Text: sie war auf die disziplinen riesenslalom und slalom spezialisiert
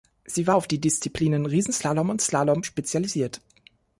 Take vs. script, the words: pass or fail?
pass